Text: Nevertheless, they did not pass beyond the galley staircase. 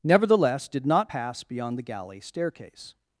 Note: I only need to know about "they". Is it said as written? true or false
false